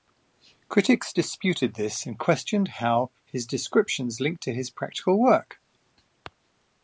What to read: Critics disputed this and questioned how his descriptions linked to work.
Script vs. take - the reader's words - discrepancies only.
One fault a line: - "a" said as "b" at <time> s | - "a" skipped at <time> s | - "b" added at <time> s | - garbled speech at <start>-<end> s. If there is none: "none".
- "his practical" added at 4.5 s